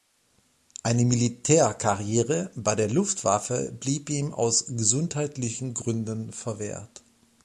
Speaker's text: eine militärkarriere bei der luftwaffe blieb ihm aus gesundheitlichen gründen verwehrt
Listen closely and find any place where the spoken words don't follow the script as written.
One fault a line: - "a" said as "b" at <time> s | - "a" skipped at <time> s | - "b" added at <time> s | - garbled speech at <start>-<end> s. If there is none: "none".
none